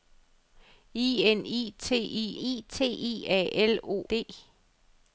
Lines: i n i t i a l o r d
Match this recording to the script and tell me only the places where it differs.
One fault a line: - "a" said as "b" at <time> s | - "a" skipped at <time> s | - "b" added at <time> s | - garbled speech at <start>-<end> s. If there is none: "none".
- "t i" added at 2.7 s
- "r" skipped at 4.0 s